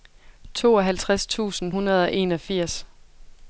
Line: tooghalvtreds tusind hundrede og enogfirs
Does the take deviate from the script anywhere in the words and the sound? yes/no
no